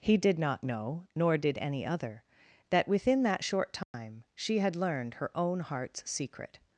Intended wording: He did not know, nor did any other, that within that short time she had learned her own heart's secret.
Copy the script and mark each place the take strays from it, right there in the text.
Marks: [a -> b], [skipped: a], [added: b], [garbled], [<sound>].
He did not know, nor did any other, that within that short time [dropout] she had learned her own heart's secret.